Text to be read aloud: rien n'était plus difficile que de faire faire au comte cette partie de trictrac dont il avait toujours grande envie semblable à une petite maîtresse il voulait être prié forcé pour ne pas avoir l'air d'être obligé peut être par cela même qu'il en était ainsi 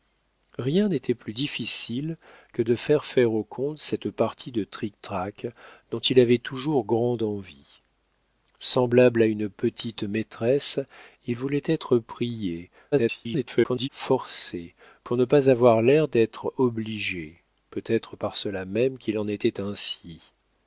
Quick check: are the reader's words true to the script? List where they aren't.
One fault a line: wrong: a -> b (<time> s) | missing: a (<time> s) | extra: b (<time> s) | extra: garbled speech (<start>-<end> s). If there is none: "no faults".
extra: garbled speech (12.9-13.9 s)